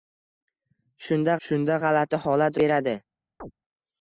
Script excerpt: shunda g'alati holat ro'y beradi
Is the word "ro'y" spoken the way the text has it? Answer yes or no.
no